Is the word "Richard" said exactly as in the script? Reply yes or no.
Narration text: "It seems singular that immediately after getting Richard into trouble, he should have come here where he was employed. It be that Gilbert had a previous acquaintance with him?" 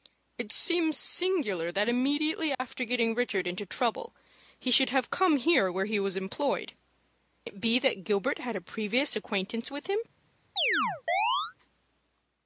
yes